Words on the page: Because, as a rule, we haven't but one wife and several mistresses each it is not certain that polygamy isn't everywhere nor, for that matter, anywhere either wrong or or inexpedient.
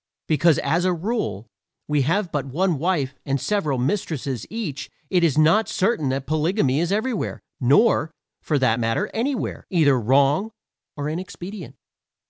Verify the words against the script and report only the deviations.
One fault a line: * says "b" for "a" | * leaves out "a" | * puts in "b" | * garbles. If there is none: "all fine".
* says "have" for "haven't"
* says "is" for "isn't"
* leaves out "or"